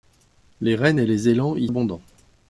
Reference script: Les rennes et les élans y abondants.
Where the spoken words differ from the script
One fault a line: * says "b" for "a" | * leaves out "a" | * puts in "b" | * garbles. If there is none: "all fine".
all fine